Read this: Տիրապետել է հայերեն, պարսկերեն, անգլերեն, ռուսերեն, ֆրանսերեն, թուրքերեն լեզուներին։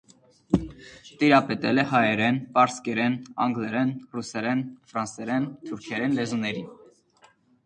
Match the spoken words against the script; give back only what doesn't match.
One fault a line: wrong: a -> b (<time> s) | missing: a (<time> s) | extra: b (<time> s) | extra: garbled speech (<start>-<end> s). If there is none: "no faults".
no faults